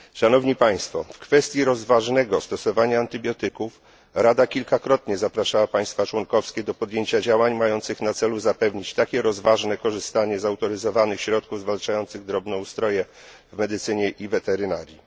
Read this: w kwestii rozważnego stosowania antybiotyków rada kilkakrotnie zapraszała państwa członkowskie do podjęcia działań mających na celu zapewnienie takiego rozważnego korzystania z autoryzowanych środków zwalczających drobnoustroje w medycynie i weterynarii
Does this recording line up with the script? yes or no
yes